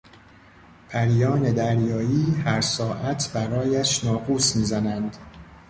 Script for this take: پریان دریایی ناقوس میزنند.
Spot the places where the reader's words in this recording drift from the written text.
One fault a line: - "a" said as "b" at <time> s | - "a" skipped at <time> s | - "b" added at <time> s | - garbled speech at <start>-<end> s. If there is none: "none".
- "هر ساعت برایش" added at 2.4 s